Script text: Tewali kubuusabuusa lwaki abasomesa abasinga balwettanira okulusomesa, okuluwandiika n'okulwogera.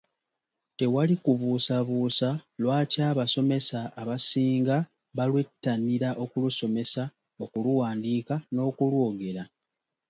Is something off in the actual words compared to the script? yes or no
no